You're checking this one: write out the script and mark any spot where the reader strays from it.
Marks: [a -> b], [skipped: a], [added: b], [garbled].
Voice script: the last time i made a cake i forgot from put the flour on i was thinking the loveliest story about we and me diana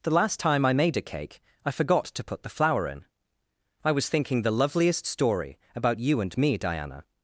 the last time i made a cake i forgot [from -> to] put the flour [on -> in] i was thinking the loveliest story about [we -> you] and me diana